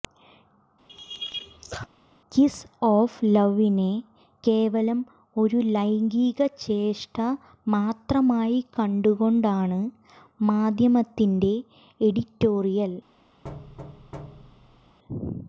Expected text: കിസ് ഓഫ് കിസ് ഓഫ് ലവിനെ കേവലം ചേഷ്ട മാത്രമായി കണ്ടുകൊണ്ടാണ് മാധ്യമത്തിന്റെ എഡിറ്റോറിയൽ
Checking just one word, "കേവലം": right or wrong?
wrong